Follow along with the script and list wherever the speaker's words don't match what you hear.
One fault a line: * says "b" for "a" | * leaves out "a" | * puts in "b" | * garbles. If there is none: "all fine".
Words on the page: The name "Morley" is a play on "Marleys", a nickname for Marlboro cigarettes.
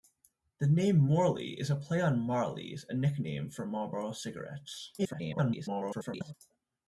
* garbles